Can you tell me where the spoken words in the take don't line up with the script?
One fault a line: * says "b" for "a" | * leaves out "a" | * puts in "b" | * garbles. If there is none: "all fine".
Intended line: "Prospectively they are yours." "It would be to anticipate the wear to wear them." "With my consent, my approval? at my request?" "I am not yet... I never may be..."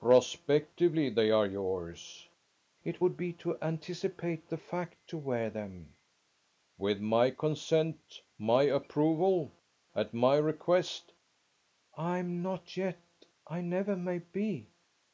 * says "fact" for "wear"